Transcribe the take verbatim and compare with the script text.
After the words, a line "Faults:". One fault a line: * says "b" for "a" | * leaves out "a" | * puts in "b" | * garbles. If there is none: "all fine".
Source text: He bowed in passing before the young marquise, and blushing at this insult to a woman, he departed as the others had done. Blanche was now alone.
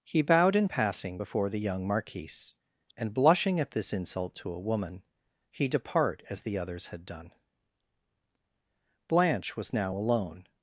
He bowed in passing before the young marquise, and blushing at this insult to a woman, he depart as the others had done. Blanche was now alone.
Faults:
* says "depart" for "departed"